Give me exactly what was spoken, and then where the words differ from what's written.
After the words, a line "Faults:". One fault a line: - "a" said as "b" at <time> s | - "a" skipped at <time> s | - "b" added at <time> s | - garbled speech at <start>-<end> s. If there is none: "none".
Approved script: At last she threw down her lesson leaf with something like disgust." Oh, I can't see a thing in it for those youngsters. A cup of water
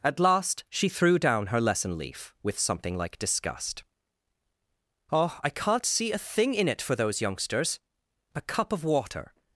At last she threw down her lesson leaf with something like disgust." Oh, I can't see a thing in it for those youngsters. A cup of water
Faults:
none